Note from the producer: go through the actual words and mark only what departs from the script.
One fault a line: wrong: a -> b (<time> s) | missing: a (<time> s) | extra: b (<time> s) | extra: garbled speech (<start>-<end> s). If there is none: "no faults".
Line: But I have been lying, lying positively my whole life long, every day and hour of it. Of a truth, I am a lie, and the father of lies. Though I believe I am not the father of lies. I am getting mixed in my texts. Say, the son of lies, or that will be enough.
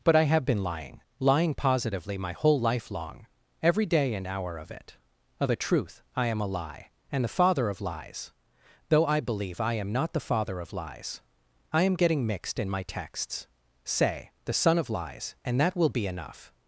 wrong: or -> and (15.4 s)